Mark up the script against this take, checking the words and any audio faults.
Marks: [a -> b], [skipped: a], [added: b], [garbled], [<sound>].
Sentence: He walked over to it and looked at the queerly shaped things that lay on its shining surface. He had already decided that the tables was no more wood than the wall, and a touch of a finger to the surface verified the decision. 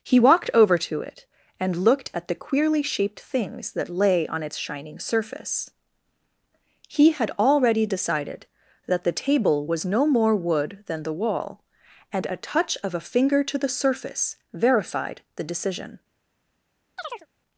He walked over to it and looked at the queerly shaped things that lay on its shining surface. He had already decided that the [tables -> table] was no more wood than the wall, and a touch of a finger to the surface verified the decision. [chirp]